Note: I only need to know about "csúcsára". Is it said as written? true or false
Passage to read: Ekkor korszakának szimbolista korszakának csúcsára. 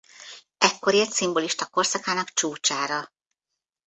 true